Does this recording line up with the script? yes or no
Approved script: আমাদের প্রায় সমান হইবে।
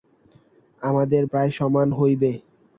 yes